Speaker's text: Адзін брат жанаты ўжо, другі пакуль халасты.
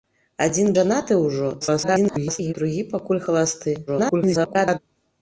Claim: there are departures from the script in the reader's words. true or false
true